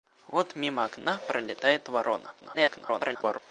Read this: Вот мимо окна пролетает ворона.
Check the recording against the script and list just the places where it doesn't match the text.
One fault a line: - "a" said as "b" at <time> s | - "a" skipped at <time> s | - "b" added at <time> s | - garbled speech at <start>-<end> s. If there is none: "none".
- garbled speech at 2.4-3.4 s